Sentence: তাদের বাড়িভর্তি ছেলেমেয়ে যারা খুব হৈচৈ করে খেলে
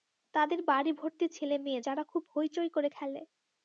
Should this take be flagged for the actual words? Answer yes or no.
no